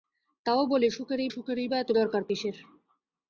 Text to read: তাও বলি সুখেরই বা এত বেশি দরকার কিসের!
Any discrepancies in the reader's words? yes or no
yes